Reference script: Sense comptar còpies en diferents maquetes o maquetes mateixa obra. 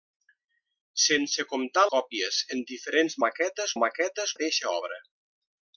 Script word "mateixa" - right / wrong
right